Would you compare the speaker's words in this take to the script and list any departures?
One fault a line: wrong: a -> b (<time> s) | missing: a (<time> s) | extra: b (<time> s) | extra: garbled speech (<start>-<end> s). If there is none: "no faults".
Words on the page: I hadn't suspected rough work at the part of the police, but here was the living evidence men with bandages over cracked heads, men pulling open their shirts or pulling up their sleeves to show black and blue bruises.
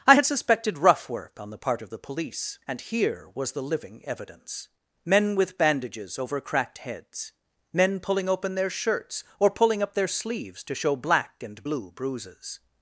wrong: hadn't -> had (0.1 s)
wrong: at -> on (1.4 s)
wrong: but -> and (2.7 s)